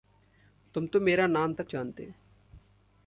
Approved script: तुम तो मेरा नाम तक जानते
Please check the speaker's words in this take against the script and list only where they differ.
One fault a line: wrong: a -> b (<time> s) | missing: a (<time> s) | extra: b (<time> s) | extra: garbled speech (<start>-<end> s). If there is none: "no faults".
no faults